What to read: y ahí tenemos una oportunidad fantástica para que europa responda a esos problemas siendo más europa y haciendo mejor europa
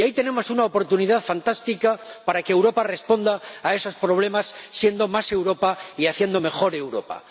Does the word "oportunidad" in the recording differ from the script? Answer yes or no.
no